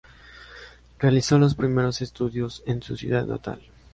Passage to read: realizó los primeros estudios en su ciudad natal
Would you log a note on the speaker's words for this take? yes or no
no